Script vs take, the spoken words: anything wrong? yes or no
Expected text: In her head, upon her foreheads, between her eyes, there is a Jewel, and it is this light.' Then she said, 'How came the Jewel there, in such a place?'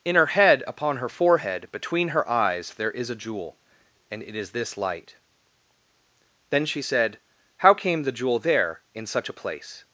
yes